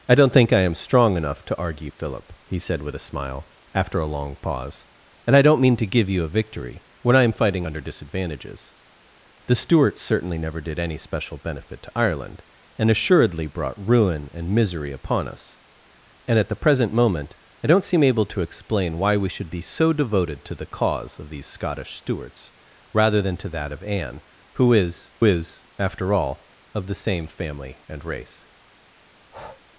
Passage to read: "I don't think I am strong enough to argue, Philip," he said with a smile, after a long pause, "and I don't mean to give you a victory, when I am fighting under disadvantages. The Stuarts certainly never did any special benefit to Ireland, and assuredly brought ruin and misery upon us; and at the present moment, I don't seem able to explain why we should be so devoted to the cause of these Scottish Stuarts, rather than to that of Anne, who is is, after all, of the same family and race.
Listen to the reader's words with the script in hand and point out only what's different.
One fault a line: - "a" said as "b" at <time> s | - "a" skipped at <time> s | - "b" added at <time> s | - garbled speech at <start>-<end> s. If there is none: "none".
none